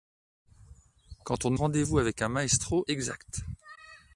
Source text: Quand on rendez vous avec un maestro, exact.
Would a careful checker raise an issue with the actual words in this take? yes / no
no